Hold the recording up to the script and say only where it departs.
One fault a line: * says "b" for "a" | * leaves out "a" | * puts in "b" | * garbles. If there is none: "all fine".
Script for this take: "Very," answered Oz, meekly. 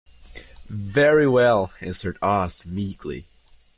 * puts in "well"